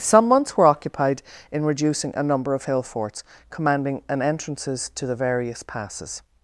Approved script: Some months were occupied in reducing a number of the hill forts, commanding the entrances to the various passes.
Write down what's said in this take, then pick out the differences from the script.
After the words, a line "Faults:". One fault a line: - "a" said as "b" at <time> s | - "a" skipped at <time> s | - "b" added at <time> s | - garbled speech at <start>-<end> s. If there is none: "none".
Some months were occupied in reducing a number of hill forts, commanding an entrances to the various passes.
Faults:
- "the" skipped at 2.6 s
- "the" said as "an" at 4.1 s